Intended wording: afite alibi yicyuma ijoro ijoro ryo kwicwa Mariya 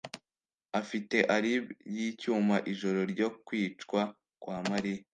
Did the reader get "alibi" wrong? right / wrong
right